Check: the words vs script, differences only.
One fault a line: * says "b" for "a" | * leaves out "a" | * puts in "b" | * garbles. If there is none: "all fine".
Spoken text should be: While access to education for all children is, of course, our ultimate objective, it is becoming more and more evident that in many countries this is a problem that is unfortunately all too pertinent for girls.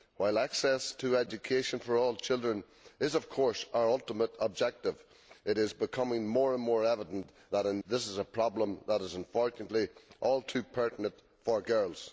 * leaves out "many countries"